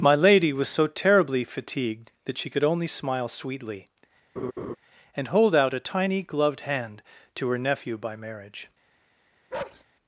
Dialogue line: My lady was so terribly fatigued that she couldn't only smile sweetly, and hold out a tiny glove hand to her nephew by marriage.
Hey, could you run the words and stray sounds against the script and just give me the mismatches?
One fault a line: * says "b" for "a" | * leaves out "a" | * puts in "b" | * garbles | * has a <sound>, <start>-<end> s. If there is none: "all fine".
* says "could" for "couldn't"
* has a laugh, 4.4-4.8 s
* says "gloved" for "glove"
* has a bark, 9.5-9.8 s